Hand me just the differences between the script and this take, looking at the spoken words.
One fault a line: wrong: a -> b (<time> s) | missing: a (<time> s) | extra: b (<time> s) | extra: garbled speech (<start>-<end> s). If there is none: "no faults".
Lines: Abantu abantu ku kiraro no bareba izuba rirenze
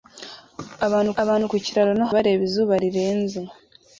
no faults